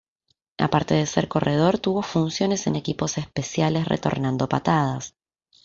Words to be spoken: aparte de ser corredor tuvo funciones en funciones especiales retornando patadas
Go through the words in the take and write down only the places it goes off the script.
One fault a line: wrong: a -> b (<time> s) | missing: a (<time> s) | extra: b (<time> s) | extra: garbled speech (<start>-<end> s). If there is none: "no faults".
wrong: funciones -> equipos (2.8 s)